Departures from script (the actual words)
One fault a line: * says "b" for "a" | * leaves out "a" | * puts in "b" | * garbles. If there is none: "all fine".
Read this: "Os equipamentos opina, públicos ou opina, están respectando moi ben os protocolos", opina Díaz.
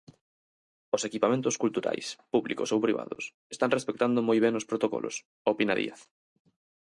* says "culturais" for "opina"
* says "privados" for "opina"